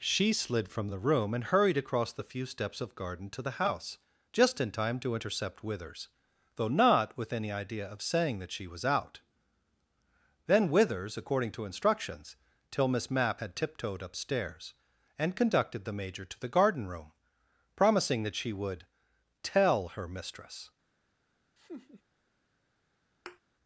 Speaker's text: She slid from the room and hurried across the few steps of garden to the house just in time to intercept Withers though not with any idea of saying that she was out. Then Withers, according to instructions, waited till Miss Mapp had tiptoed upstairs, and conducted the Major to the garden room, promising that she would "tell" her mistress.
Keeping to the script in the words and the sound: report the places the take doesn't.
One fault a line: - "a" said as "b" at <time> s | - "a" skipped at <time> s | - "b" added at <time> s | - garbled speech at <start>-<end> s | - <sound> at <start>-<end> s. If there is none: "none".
- "waited" skipped at 12.4 s
- laugh at 21.6-22.0 s
- thud at 23.3-23.4 s